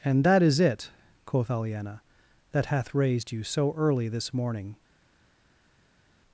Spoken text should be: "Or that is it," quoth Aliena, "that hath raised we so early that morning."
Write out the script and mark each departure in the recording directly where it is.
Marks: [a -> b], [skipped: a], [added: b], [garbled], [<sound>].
["Or -> And] that is it," quoth Aliena, "that hath raised [we -> you] so early [that -> this] morning."